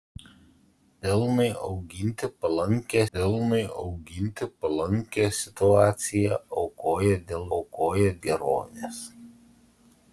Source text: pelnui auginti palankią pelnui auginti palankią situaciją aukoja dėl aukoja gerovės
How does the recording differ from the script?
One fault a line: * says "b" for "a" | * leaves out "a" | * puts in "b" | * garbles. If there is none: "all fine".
all fine